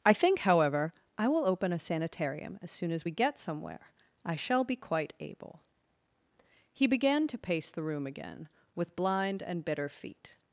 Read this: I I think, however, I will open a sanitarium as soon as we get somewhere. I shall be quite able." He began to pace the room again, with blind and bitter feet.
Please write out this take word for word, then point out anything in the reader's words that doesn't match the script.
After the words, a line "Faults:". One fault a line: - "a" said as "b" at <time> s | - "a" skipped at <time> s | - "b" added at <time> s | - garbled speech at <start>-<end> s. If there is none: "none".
I think, however, I will open a sanitarium as soon as we get somewhere. I shall be quite able." He began to pace the room again, with blind and bitter feet.
Faults:
- "I" skipped at 0.1 s